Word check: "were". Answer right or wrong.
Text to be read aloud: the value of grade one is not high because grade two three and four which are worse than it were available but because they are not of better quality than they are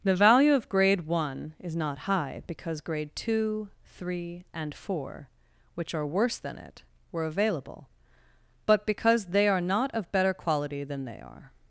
right